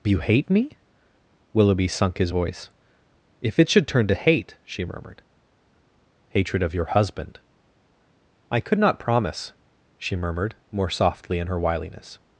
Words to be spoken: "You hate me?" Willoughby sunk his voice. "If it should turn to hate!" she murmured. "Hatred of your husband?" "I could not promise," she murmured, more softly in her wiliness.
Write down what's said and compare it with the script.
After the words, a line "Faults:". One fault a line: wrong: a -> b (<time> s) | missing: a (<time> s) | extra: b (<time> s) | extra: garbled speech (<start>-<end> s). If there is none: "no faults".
"You hate me?" Willoughby sunk his voice. "If it should turn to hate!" she murmured. "Hatred of your husband?" "I could not promise," she murmured, more softly in her wiliness.
Faults:
no faults